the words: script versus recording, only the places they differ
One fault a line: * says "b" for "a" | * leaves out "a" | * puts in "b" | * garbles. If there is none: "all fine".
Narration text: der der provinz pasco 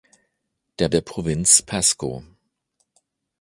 all fine